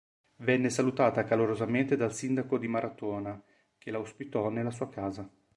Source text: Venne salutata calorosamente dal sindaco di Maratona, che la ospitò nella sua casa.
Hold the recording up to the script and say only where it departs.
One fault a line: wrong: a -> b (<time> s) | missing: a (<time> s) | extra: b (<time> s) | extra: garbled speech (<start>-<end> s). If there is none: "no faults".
no faults